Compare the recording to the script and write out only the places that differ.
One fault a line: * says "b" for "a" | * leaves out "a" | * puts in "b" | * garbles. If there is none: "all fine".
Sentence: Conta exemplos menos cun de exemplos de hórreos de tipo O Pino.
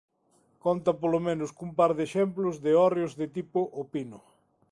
* says "polo" for "exemplos"
* puts in "par"